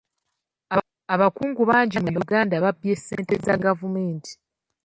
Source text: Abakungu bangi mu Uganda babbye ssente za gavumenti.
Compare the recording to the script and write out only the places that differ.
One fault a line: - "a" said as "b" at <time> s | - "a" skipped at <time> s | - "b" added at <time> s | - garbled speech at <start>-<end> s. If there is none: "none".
none